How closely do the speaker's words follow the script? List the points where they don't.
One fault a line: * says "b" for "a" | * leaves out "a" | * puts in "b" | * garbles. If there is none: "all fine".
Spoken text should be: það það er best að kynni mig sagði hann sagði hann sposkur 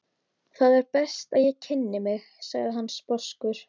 * leaves out "það"
* puts in "ég"
* leaves out "sagði hann"